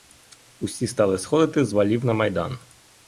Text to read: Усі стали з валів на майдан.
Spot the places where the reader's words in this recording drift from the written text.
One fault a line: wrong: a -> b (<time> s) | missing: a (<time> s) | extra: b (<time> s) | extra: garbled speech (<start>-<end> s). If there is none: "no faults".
extra: сходити (1.2 s)